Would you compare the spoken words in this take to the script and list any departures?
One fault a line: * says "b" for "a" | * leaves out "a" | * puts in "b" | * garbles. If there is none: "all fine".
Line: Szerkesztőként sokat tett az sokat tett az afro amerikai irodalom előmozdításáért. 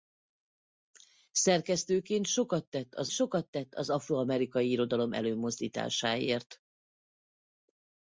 all fine